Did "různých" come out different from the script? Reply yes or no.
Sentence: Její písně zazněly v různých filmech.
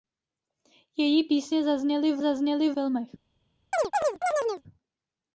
yes